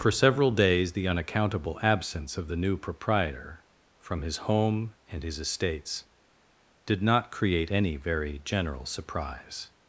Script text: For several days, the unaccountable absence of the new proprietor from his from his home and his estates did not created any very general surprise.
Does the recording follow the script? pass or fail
fail